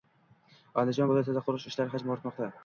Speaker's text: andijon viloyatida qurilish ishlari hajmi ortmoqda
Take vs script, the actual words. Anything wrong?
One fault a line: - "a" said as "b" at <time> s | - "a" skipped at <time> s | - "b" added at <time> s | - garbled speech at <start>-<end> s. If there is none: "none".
none